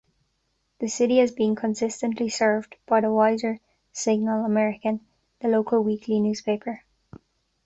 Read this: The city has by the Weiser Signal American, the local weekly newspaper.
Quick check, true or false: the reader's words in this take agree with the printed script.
false